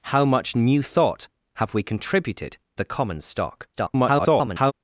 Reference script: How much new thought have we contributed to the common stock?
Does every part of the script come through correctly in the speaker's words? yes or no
no